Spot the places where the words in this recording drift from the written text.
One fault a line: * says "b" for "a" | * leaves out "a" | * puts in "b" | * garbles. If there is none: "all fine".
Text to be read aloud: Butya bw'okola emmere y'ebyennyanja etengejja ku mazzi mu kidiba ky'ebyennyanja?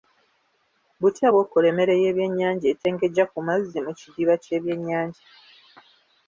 all fine